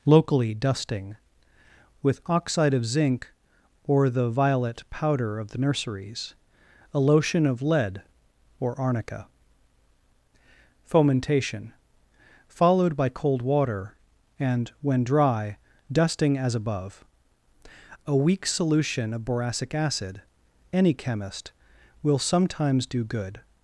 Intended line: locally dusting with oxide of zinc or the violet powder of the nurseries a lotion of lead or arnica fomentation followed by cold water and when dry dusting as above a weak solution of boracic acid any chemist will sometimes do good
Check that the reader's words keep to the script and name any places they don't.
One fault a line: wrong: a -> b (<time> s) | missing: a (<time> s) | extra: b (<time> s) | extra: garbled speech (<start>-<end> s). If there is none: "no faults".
no faults